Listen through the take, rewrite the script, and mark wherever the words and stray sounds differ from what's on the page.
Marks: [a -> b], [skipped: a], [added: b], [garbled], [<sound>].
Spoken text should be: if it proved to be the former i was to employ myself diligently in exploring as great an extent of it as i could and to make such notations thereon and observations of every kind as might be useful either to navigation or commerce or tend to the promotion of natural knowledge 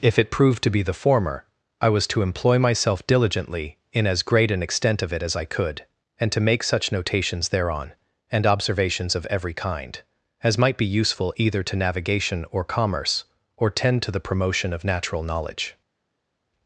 if it proved to be the former i was to employ myself diligently in [skipped: exploring] as great an extent of it as i could and to make such notations thereon and observations of every kind as might be useful either to navigation or commerce or tend to the promotion of natural knowledge